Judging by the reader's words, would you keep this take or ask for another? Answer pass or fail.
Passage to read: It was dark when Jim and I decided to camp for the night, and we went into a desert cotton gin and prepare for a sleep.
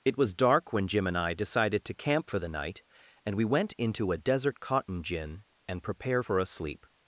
pass